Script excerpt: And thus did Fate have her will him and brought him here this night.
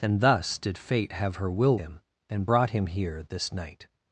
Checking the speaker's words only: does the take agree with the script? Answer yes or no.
yes